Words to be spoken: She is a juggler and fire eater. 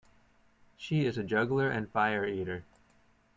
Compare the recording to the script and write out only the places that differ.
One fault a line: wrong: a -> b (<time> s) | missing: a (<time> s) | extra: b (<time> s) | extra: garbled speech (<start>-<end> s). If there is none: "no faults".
no faults